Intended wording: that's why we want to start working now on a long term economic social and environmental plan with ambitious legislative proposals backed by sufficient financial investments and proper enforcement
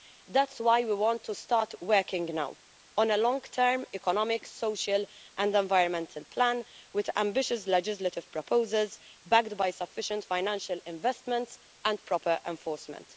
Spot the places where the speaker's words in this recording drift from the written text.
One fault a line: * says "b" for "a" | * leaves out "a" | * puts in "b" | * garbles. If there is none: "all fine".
all fine